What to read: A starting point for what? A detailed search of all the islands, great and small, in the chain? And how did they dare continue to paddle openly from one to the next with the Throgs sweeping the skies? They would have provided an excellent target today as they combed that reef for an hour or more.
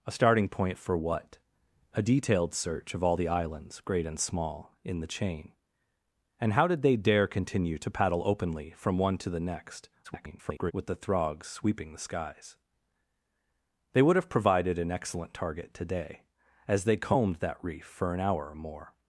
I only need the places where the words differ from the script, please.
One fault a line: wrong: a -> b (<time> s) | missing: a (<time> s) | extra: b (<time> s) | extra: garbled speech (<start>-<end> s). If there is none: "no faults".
extra: garbled speech (10.0-10.7 s)